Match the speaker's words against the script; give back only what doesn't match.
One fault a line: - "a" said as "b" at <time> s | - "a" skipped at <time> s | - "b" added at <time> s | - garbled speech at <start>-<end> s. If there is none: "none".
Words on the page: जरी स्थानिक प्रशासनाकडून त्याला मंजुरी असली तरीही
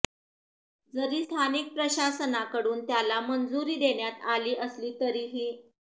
- "देण्यात आली" added at 3.8 s